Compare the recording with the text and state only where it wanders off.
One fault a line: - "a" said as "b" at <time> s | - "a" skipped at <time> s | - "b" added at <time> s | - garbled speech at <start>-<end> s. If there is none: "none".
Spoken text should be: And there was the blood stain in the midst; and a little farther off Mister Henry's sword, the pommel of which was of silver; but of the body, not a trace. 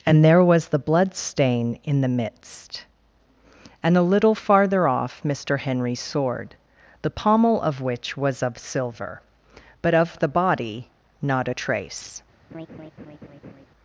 none